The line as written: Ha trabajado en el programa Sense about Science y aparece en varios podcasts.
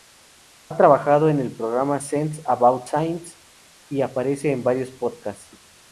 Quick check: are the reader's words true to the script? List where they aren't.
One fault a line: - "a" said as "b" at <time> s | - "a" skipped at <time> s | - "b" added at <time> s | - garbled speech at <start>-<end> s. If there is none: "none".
none